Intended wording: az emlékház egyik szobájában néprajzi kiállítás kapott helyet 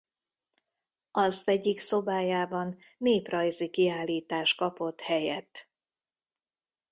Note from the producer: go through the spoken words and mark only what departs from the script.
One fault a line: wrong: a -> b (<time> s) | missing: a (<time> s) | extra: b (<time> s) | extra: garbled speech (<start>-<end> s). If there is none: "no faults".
missing: emlékház (1.4 s)